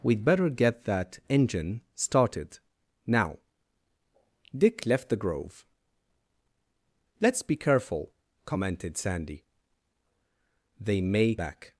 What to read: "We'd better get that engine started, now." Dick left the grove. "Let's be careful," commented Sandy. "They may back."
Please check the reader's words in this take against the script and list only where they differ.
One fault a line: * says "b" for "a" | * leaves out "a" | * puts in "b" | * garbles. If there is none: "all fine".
all fine